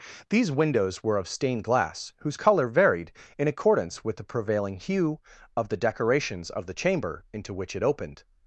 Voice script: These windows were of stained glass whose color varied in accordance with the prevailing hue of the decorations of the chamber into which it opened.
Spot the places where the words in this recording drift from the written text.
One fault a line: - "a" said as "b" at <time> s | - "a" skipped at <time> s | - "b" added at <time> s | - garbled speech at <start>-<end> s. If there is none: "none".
none